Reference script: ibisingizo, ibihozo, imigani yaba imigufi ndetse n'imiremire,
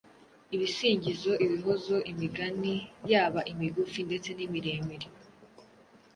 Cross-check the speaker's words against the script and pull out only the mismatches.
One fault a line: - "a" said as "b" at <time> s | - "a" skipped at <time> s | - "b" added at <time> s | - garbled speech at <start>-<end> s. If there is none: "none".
none